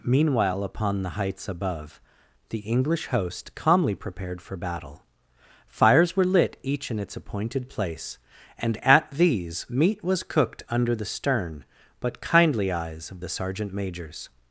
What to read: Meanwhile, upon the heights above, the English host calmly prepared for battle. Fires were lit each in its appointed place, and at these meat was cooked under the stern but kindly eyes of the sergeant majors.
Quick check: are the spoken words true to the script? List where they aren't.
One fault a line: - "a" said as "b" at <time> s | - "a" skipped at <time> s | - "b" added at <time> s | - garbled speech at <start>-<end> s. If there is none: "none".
none